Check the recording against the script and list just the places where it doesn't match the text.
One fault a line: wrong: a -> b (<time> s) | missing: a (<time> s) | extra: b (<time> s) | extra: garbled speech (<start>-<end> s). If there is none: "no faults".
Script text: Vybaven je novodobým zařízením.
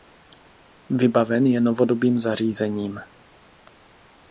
no faults